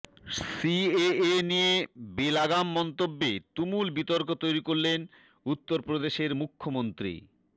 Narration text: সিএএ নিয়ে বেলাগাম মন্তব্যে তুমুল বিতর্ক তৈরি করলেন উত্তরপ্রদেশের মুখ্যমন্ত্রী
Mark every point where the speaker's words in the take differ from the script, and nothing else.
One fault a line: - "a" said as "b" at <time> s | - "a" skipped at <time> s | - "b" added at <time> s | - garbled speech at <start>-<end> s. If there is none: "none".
none